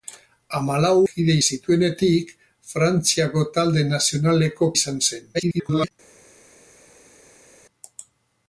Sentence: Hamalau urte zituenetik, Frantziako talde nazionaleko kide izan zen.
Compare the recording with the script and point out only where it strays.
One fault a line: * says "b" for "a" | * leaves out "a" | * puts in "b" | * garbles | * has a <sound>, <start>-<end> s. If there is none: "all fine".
* says "kide" for "urte"
* leaves out "kide"
* garbles